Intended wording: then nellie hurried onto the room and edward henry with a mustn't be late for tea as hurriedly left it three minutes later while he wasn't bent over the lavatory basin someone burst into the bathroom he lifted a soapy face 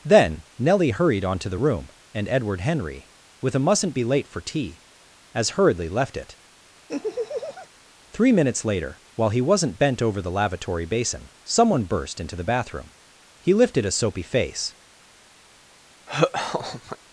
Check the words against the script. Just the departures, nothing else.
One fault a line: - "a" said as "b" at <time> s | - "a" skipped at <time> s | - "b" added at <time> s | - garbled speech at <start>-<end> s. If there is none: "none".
none